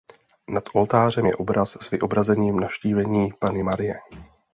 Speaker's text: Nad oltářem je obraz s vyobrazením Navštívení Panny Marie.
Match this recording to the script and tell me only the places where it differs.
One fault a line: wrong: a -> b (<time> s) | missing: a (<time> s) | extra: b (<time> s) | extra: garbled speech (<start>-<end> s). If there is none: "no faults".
no faults